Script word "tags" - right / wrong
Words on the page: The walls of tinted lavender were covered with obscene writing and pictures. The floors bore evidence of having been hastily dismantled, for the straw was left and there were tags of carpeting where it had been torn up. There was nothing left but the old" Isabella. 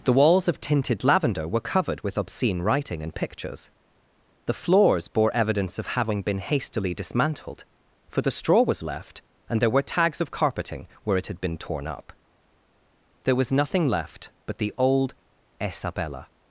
right